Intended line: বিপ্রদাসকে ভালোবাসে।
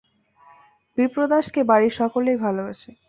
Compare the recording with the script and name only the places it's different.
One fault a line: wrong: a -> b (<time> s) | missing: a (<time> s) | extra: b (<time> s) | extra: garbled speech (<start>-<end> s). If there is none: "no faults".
extra: বাড়ির সকলেই (1.6 s)